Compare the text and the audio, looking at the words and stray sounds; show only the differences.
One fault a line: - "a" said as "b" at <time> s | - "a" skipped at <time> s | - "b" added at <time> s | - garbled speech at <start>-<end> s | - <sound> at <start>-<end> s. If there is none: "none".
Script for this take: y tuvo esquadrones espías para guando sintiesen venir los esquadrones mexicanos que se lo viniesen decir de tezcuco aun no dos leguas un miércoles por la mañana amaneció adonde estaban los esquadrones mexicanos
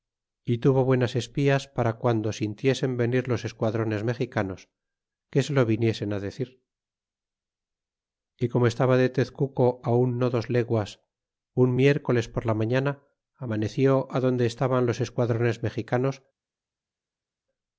- "esquadrones" said as "buenas" at 0.8 s
- "y como estaba" added at 8.4 s